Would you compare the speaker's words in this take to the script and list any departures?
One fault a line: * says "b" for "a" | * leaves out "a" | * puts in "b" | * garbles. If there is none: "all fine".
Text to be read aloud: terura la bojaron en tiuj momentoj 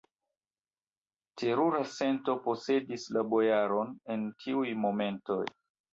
* puts in "sento posedis"